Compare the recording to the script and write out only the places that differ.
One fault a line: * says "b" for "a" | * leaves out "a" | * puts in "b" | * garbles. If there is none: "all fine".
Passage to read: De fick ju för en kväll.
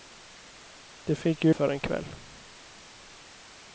all fine